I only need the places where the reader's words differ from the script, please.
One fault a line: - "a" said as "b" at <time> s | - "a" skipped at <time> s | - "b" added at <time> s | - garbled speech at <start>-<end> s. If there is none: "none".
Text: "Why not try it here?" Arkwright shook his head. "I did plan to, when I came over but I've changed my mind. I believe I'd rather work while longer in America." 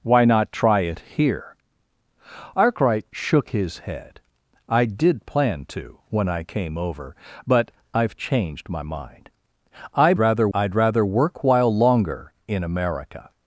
- "believe" said as "rather" at 10.2 s